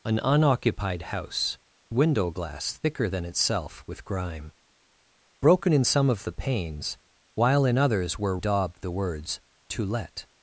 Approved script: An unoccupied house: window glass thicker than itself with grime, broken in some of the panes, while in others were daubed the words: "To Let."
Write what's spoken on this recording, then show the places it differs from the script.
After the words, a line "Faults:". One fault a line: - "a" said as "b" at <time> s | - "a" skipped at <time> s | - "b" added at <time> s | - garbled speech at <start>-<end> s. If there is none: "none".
An unoccupied house: window glass thicker than itself with grime, broken in some of the panes, while in others were daubed the words: "To Let."
Faults:
none